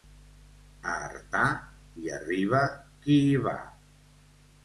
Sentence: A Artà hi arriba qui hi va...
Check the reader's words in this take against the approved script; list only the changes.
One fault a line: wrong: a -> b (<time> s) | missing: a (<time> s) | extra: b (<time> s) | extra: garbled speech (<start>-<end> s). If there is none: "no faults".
no faults